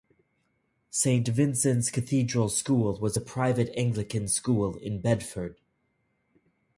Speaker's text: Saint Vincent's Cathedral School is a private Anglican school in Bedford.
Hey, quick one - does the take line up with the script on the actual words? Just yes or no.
no